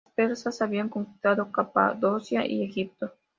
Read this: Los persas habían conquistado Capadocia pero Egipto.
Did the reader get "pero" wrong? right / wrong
wrong